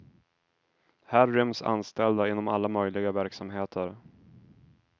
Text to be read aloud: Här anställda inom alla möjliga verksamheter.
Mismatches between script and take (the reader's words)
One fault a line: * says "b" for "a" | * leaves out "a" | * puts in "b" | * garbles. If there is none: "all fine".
* puts in "ryms"